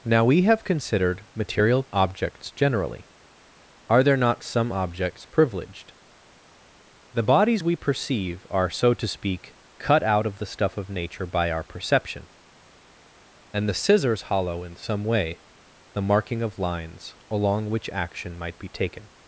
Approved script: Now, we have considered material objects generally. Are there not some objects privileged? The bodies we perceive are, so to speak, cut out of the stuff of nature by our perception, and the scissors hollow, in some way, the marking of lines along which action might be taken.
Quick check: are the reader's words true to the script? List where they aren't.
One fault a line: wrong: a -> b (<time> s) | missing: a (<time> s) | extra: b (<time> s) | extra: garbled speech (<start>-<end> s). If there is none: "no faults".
no faults